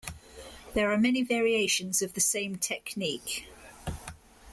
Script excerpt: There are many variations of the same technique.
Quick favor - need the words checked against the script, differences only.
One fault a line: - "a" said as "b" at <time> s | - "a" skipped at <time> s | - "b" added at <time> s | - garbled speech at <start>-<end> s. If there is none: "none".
none